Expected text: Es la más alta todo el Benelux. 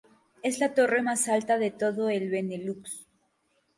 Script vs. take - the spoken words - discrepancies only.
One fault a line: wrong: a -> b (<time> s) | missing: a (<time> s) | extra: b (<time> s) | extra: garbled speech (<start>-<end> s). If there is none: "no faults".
extra: torre (0.7 s)
extra: de (1.6 s)